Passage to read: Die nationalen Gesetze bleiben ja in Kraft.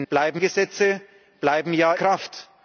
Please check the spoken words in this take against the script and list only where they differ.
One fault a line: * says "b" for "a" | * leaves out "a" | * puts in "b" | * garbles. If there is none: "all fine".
* says "bleiben" for "nationalen"
* leaves out "in"